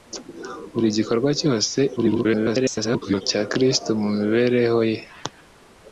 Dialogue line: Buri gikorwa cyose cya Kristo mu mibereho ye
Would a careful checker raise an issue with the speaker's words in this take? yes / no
yes